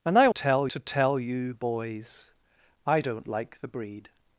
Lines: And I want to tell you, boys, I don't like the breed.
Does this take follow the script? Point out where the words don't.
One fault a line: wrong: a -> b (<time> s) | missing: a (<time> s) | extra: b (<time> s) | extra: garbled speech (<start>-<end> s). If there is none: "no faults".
wrong: want -> tell (0.3 s)